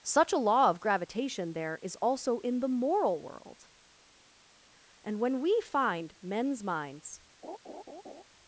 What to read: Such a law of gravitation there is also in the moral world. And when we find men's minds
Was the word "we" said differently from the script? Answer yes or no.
no